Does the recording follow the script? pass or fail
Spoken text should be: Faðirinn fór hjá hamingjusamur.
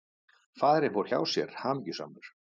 fail